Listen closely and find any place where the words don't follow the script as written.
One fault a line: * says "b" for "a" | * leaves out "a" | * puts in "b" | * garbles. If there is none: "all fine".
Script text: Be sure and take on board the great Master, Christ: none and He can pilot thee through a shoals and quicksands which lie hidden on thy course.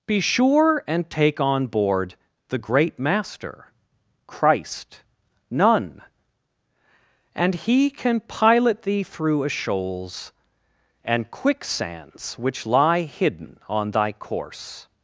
all fine